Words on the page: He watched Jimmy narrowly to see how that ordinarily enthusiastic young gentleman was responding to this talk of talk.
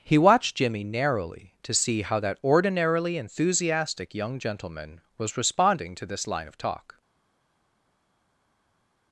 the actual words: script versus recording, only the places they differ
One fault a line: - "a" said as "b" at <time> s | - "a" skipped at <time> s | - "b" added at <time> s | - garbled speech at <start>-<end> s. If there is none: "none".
- "talk" said as "line" at 6.2 s